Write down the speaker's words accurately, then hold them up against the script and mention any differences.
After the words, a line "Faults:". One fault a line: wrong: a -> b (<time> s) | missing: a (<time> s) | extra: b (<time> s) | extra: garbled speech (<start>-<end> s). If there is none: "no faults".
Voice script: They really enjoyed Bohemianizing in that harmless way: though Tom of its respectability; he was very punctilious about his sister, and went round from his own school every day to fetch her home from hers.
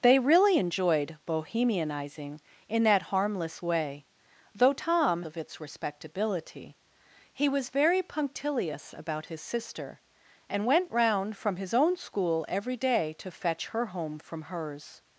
They really enjoyed Bohemianizing in that harmless way: though Tom of its respectability; he was very punctilious about his sister, and went round from his own school every day to fetch her home from hers.
Faults:
no faults